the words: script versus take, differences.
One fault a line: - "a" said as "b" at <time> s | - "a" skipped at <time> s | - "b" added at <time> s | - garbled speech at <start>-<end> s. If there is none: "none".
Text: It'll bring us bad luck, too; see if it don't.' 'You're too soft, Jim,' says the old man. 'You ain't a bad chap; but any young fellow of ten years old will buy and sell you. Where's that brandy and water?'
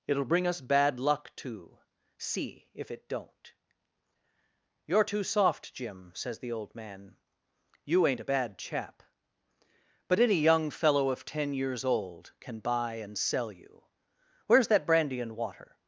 - "will" said as "can" at 12.4 s